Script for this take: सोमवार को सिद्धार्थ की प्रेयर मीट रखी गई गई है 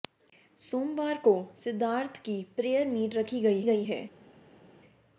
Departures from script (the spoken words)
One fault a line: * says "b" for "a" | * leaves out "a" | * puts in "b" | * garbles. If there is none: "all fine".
all fine